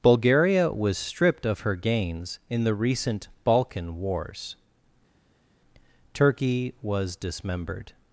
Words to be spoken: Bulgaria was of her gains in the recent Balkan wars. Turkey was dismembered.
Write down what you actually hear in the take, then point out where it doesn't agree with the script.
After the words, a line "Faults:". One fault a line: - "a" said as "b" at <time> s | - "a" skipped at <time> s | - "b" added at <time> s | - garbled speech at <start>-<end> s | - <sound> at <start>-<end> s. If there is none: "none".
Bulgaria was stripped of her gains in the recent Balkan wars. Turkey was dismembered.
Faults:
- "stripped" added at 1.0 s